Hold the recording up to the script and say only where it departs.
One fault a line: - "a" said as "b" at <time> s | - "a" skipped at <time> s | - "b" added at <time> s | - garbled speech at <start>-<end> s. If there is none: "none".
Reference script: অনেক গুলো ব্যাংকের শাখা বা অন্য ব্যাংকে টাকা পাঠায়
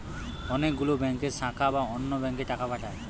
none